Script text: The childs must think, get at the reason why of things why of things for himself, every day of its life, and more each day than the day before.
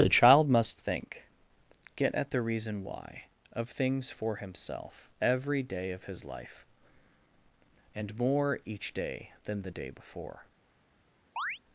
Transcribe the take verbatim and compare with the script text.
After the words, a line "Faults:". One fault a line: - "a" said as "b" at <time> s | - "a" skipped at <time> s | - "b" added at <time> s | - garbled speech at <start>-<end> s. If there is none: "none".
The child must think, get at the reason why of things for himself, every day of his life, and more each day than the day before.
Faults:
- "childs" said as "child" at 0.1 s
- "why of things" skipped at 4.1 s
- "its" said as "his" at 6.0 s